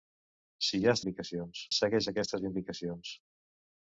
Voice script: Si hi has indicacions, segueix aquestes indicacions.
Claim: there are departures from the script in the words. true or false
false